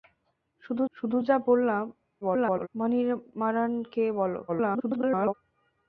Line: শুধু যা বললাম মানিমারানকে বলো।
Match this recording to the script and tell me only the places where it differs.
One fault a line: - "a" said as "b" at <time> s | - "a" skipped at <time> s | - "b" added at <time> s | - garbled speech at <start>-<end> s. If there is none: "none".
- "শুধু" added at 1.0 s
- garbled speech at 2.2-2.7 s
- garbled speech at 4.5-5.3 s